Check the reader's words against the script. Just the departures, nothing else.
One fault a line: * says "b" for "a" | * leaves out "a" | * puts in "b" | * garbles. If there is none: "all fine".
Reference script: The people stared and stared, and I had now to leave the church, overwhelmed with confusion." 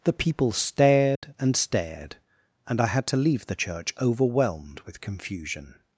* leaves out "now"